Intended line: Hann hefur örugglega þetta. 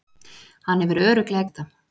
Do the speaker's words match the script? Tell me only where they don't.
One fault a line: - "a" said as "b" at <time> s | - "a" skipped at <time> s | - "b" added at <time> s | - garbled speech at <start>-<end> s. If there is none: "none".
none